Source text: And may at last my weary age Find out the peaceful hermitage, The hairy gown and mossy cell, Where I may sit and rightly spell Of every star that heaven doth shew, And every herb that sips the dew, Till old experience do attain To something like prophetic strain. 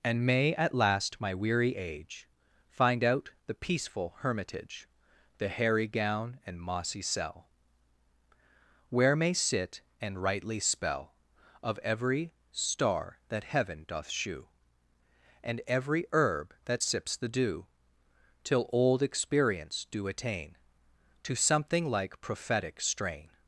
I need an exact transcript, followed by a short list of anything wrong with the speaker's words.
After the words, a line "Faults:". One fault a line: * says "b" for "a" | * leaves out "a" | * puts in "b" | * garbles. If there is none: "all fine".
And may at last my weary age Find out the peaceful hermitage, The hairy gown and mossy cell, Where may sit and rightly spell Of every star that heaven doth shew, And every herb that sips the dew, Till old experience do attain To something like prophetic strain.
Faults:
* leaves out "I"